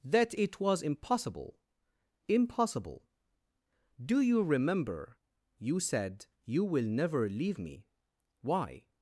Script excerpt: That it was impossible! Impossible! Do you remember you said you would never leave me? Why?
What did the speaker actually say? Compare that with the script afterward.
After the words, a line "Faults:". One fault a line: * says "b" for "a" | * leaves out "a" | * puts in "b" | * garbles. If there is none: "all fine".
That it was impossible! Impossible! Do you remember you said you will never leave me? Why?
Faults:
* says "will" for "would"